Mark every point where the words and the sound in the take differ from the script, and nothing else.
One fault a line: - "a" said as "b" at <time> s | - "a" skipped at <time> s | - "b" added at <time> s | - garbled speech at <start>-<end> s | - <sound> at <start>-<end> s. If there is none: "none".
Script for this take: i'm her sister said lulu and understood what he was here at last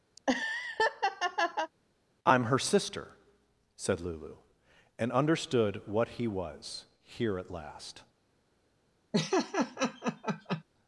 - laugh at 0.2-1.7 s
- laugh at 9.1-10.6 s